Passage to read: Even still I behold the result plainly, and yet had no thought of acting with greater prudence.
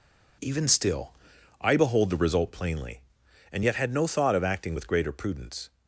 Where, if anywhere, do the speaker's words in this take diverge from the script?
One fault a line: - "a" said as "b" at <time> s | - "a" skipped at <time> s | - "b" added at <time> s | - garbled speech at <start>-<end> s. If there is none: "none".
none